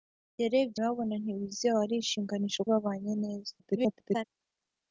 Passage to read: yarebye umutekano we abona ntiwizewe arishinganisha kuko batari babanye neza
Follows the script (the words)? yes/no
no